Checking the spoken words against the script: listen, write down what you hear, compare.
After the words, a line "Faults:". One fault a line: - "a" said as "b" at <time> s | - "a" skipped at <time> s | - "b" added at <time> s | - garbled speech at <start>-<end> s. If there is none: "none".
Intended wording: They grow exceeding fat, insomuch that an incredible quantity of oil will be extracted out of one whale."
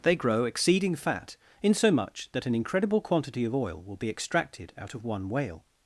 They grow exceeding fat, insomuch that an incredible quantity of oil will be extracted out of one whale."
Faults:
none